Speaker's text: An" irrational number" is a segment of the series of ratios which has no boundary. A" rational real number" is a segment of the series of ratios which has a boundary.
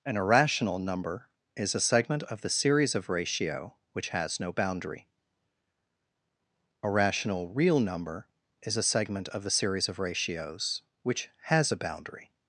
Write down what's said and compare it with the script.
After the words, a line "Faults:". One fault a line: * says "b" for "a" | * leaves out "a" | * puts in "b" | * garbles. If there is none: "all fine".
An" irrational number" is a segment of the series of ratio which has no boundary. A" rational real number" is a segment of the series of ratios which has a boundary.
Faults:
* says "ratio" for "ratios"